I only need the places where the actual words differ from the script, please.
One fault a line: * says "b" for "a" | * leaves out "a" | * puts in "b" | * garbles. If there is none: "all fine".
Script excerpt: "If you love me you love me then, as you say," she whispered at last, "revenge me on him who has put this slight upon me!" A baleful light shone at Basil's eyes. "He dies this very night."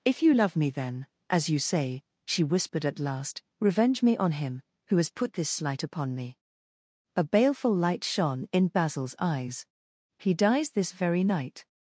* leaves out "you love me"
* says "in" for "at"